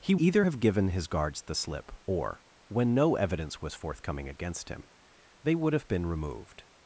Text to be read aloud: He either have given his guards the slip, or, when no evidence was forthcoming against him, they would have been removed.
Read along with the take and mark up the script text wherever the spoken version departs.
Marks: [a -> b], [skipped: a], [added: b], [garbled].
He either have given his guards the slip, or, when no evidence was forthcoming against him, they would have been removed.